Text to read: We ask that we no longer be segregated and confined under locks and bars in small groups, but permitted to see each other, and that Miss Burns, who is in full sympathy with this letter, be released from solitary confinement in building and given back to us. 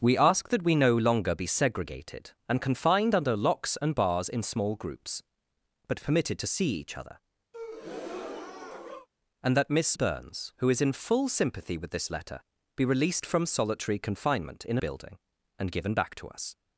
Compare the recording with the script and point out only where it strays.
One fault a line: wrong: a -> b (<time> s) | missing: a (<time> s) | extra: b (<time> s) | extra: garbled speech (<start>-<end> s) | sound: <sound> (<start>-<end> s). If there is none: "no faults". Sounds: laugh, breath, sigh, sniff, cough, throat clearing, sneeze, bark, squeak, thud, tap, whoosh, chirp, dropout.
sound: breath (7.5-9.1 s)